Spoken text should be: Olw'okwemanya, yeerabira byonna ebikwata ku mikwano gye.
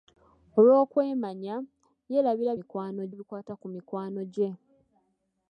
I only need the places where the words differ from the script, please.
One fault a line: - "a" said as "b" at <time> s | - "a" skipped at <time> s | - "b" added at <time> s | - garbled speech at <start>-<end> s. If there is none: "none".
- "byonna" said as "mikwano" at 2.6 s